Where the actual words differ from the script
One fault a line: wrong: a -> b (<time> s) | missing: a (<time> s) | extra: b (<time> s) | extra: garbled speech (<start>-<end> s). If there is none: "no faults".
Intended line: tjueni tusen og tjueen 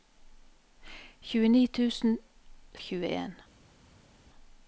no faults